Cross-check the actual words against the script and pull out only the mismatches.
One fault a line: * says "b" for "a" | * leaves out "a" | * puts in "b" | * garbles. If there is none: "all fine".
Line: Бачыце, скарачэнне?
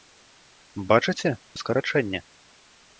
all fine